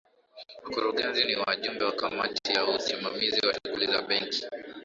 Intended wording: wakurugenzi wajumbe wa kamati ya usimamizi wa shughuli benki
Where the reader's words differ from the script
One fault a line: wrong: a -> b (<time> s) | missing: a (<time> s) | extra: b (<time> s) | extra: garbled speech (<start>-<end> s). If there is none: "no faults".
extra: ni (1.2 s)
extra: za (3.9 s)